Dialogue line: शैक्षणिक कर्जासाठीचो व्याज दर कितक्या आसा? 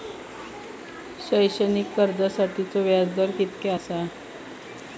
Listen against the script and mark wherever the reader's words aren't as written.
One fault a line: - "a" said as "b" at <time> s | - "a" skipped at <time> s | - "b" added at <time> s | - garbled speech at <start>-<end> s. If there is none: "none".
none